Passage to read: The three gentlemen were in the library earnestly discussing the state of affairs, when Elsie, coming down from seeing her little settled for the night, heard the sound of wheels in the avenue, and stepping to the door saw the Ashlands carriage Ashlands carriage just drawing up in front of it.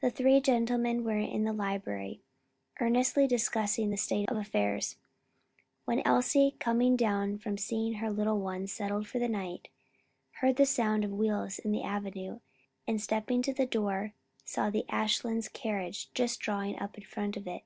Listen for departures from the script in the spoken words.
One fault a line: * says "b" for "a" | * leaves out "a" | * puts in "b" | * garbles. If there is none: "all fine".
* puts in "ones"
* leaves out "Ashlands carriage"